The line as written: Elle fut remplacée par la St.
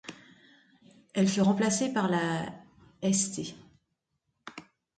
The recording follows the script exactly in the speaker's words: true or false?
true